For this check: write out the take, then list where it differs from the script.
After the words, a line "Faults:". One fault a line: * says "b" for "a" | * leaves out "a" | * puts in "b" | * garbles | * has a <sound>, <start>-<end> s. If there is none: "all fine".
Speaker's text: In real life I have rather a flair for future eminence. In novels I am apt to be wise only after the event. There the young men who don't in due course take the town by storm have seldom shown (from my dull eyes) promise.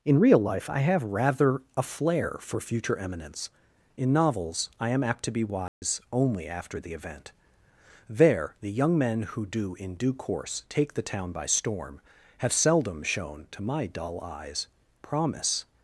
In real life I have rather a flair for future eminence. In novels I am apt to be wise only after the event. There the young men who do in due course take the town by storm have seldom shown (to my dull eyes) promise.
Faults:
* has a dropout, 5.7-5.8 s
* says "do" for "don't"
* says "to" for "from"